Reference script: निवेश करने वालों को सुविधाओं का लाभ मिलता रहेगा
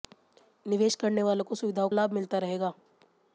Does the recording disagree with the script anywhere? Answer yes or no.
yes